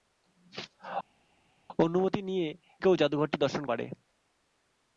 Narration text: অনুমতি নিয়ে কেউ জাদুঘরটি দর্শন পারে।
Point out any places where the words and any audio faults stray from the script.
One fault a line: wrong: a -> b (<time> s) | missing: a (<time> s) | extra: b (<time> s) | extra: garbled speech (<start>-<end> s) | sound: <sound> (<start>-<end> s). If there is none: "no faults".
no faults